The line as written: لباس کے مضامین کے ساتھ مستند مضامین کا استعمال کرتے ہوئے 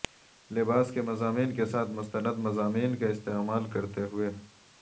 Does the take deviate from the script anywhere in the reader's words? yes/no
no